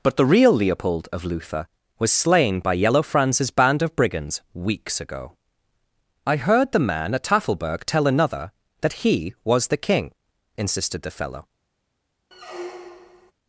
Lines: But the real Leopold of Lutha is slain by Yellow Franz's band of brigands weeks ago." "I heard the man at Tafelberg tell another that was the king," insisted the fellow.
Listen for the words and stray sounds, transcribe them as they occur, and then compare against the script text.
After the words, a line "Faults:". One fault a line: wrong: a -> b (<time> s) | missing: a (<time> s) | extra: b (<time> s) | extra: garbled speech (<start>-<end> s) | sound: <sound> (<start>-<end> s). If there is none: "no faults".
But the real Leopold of Lutha was slain by Yellow Franz's band of brigands weeks ago." "I heard the man at Tafelberg tell another that he was the king," insisted the fellow.
Faults:
wrong: is -> was (2.0 s)
extra: he (9.0 s)
sound: squeak (12.3-13.3 s)